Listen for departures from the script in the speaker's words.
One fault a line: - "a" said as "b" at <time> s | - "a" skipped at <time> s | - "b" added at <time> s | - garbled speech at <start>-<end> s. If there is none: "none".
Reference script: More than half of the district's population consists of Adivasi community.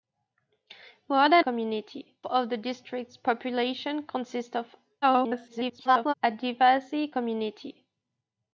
- "half" said as "community" at 1.4 s
- garbled speech at 5.0-6.1 s